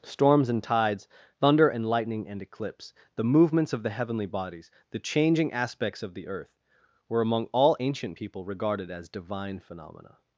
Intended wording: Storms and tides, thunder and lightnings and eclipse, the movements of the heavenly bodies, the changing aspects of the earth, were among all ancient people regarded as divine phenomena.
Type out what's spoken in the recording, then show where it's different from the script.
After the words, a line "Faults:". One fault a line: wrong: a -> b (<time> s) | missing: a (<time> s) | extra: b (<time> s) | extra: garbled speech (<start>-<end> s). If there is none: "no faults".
Storms and tides, thunder and lightning and eclipse, the movements of the heavenly bodies, the changing aspects of the earth, were among all ancient people regarded as divine phenomena.
Faults:
wrong: lightnings -> lightning (1.8 s)